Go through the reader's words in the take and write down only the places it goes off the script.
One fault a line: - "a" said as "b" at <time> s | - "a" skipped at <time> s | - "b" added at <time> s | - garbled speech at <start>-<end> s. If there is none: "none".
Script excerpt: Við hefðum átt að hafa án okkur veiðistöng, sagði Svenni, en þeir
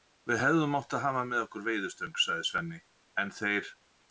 - "án" said as "með" at 1.3 s